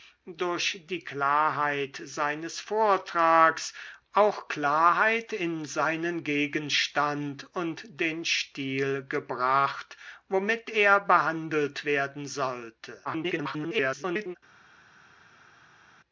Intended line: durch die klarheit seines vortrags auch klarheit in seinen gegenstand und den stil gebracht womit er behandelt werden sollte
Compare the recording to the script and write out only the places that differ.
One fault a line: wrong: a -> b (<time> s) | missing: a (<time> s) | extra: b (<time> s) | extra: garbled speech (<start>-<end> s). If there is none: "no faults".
extra: garbled speech (13.0-14.4 s)